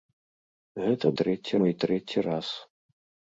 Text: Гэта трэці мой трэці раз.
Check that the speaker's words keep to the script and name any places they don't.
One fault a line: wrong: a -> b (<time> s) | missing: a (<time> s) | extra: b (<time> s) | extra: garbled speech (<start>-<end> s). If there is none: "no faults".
no faults